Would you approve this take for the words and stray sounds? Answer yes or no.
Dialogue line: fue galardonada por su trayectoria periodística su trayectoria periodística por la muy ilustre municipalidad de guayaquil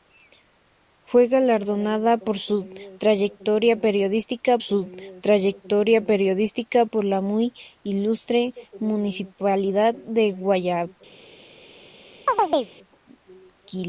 no